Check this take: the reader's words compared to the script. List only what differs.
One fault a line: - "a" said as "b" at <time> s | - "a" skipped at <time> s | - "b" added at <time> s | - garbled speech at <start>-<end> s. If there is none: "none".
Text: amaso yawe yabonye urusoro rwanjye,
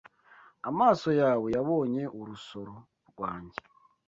none